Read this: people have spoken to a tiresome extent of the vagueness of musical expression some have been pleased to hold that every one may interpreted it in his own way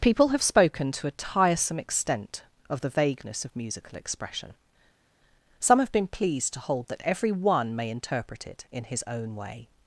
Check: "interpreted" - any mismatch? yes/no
yes